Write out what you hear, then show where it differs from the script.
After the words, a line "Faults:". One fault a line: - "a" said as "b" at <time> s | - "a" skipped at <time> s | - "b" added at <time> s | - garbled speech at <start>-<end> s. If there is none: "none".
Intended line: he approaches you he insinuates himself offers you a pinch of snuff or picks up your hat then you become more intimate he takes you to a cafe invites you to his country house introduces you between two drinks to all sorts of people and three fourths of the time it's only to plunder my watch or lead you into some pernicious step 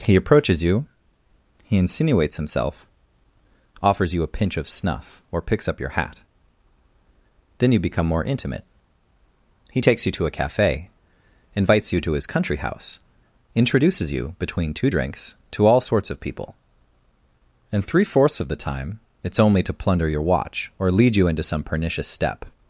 he approaches you he insinuates himself offers you a pinch of snuff or picks up your hat then you become more intimate he takes you to a cafe invites you to his country house introduces you between two drinks to all sorts of people and three fourths of the time it's only to plunder your watch or lead you into some pernicious step
Faults:
- "my" said as "your" at 20.1 s